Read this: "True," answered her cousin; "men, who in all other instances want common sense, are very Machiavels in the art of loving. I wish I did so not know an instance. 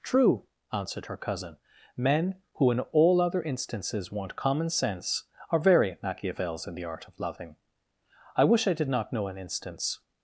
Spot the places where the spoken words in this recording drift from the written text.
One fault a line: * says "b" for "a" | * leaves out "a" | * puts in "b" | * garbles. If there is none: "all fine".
* leaves out "so"